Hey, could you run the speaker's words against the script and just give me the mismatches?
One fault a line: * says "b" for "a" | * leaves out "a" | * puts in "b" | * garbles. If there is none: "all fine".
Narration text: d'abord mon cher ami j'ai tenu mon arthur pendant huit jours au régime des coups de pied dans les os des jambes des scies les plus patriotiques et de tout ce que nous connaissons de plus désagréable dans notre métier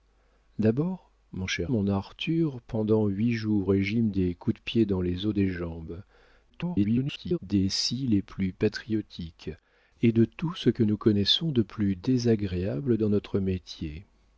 * leaves out "ami j'ai tenu"
* leaves out "au"
* garbles